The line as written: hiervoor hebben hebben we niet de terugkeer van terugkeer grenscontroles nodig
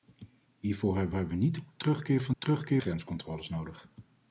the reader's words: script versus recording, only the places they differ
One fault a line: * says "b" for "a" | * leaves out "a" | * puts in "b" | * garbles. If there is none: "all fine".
all fine